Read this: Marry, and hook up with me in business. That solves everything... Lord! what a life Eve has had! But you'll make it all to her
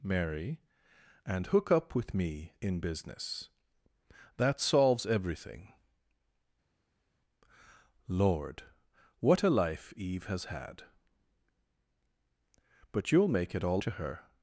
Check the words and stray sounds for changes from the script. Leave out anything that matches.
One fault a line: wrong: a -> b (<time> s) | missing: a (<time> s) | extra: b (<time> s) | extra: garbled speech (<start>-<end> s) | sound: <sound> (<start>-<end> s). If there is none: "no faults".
no faults